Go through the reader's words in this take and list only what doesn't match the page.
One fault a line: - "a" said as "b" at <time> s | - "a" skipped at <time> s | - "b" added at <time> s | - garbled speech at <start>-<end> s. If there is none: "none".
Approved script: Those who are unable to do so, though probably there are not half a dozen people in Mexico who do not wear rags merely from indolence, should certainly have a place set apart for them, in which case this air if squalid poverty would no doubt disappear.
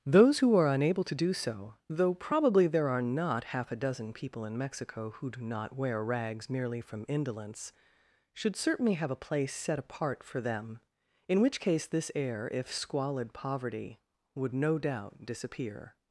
none